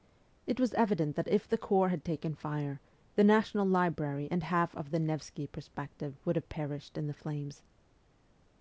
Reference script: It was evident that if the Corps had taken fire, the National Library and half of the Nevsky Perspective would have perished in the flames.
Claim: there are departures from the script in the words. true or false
false